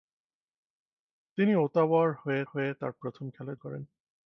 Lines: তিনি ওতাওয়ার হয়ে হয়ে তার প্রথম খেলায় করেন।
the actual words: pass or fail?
pass